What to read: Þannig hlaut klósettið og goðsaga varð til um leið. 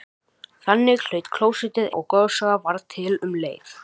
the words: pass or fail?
pass